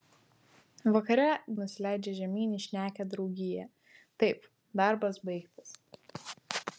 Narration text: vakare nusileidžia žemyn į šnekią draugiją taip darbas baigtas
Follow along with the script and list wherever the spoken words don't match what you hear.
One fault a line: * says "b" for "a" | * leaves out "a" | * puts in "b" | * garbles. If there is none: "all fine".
all fine